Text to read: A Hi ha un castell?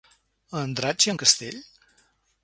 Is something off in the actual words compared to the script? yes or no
yes